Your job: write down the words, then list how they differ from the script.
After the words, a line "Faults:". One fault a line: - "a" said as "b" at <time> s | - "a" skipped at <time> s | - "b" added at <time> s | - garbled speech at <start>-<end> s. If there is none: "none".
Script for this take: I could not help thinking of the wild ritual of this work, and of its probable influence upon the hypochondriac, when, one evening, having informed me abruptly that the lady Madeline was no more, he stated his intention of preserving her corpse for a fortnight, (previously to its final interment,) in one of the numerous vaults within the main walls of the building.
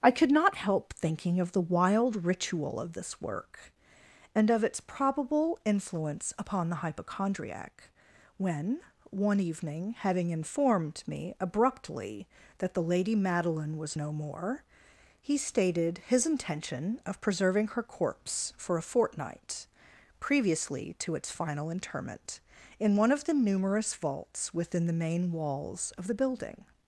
I could not help thinking of the wild ritual of this work, and of its probable influence upon the hypochondriac, when, one evening, having informed me abruptly that the lady Madeline was no more, he stated his intention of preserving her corpse for a fortnight, (previously to its final interment,) in one of the numerous vaults within the main walls of the building.
Faults:
none